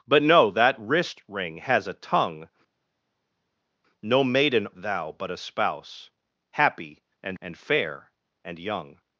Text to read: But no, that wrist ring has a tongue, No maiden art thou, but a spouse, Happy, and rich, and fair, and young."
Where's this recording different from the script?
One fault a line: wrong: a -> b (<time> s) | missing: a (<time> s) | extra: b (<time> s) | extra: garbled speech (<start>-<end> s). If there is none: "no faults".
missing: art (4.7 s)
missing: rich (7.4 s)